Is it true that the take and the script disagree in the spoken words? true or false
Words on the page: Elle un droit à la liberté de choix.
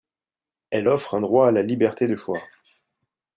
true